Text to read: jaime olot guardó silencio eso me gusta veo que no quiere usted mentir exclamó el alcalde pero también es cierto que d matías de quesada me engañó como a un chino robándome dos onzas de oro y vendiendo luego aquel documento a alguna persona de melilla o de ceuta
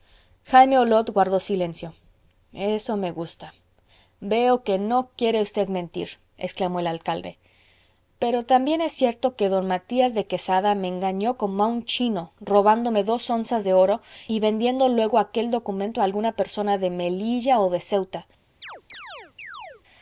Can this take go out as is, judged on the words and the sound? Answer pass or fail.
fail